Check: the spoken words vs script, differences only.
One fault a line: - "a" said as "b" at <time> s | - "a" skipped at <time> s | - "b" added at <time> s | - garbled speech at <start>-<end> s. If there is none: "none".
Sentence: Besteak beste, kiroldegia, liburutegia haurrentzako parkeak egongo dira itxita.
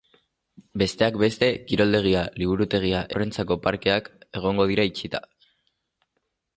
none